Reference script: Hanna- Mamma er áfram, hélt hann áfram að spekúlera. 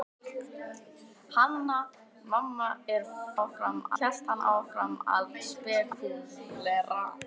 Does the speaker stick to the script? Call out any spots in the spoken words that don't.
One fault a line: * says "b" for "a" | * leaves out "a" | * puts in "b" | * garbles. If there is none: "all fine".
all fine